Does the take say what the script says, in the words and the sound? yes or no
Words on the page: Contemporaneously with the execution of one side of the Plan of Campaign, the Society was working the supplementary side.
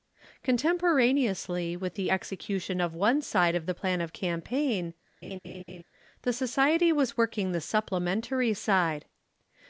no